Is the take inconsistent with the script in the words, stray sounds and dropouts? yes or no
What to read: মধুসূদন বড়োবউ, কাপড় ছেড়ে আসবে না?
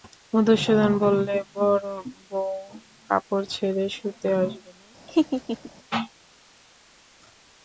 yes